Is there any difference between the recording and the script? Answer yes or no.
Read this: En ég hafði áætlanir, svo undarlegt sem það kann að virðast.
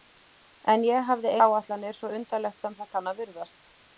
no